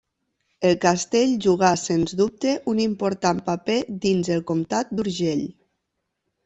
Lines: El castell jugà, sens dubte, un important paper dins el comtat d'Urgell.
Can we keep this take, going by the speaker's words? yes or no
yes